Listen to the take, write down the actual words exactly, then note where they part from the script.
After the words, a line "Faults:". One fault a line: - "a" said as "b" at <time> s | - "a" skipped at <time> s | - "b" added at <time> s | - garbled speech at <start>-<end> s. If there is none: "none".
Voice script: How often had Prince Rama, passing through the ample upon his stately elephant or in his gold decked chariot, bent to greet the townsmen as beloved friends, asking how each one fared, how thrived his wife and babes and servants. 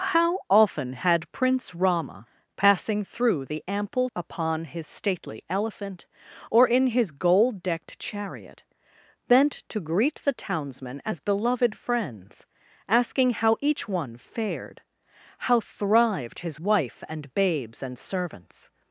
How often had Prince Rama, passing through the ample upon his stately elephant or in his gold decked chariot, bent to greet the townsmen as beloved friends, asking how each one fared, how thrived his wife and babes and servants.
Faults:
none